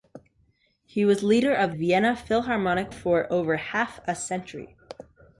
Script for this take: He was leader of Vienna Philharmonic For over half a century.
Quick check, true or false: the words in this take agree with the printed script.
true